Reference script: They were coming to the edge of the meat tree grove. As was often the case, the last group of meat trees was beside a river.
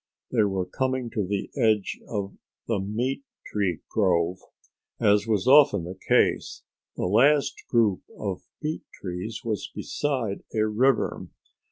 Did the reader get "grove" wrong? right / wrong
right